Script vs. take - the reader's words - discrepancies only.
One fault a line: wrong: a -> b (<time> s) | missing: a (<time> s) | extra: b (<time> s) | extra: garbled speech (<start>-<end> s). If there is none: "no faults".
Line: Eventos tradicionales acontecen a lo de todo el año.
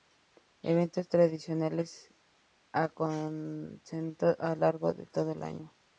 extra: largo (4.6 s)